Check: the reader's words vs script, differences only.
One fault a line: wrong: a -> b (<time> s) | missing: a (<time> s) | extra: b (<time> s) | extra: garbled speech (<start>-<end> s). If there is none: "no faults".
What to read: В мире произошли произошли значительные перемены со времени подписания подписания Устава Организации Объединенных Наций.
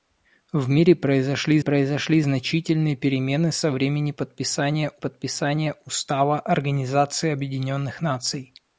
no faults